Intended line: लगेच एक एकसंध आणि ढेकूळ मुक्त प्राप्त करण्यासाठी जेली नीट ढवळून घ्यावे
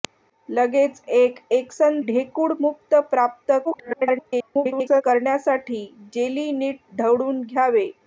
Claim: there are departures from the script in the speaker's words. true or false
true